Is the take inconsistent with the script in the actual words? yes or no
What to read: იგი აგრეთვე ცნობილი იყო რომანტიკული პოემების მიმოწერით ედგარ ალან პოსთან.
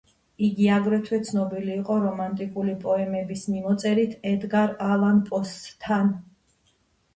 no